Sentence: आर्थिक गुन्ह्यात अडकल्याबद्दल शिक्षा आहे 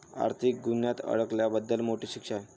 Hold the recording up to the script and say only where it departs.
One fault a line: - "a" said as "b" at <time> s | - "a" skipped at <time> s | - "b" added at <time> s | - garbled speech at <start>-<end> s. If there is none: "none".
- "मोठी" added at 1.8 s